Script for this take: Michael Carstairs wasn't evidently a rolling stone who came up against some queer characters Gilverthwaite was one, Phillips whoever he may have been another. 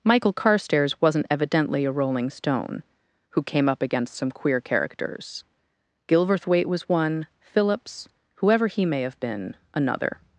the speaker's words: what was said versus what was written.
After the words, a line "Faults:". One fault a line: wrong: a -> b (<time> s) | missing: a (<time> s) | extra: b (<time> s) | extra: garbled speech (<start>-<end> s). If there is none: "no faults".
Michael Carstairs wasn't evidently a rolling stone who came up against some queer characters Gilverthwaite was one, Phillips whoever he may have been another.
Faults:
no faults